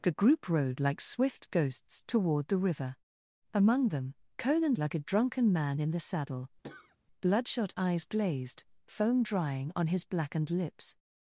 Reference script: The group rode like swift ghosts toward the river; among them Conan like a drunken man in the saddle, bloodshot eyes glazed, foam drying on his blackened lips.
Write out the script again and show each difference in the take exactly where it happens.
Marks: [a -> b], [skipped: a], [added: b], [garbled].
The group rode like swift ghosts toward the river; among them Conan like a drunken man in the saddle, bloodshot eyes glazed, foam drying on his blackened lips.